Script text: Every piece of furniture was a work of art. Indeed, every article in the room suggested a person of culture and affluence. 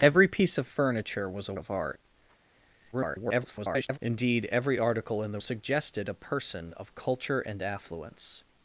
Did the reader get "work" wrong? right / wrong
wrong